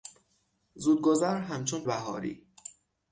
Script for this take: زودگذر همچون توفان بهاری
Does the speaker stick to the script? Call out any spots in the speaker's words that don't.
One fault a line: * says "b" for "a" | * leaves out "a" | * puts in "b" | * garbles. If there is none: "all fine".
* leaves out "توفان"